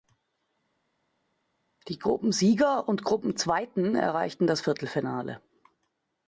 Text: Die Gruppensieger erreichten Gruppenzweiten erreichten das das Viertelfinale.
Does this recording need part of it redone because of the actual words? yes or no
yes